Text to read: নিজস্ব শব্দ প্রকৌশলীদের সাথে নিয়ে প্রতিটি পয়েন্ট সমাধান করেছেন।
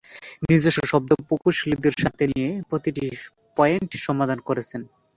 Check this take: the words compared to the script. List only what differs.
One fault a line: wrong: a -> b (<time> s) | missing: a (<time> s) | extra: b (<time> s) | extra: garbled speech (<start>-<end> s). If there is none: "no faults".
no faults